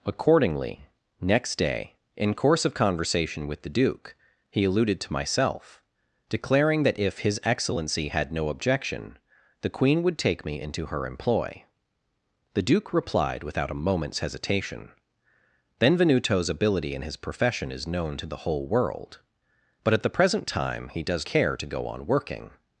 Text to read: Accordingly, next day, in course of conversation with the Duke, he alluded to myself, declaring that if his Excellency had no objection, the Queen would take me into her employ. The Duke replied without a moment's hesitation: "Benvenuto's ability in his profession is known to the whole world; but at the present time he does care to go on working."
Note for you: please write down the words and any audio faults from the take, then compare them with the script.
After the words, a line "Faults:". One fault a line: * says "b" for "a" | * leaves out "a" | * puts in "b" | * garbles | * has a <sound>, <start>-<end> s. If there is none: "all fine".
Accordingly, next day, in course of conversation with the Duke, he alluded to myself, declaring that if his Excellency had no objection, the Queen would take me into her employ. The Duke replied without a moment's hesitation: "Benvenuto's ability in his profession is known to the whole world; but at the present time he does care to go on working."
Faults:
all fine